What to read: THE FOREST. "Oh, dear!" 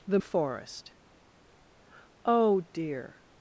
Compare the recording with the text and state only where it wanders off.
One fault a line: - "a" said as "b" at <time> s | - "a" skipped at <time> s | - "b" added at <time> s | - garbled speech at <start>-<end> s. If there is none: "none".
none